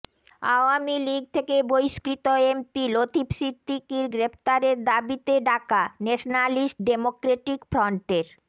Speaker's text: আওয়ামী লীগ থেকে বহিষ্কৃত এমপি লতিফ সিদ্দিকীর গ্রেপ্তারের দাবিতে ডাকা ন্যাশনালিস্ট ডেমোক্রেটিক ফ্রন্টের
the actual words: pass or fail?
pass